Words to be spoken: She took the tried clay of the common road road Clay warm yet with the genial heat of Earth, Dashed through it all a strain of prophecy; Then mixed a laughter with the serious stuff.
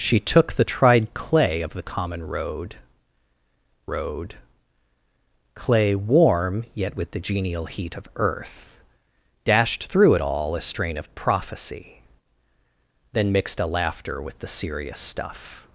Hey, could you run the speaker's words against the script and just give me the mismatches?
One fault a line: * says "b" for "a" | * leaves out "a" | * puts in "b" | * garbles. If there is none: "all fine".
all fine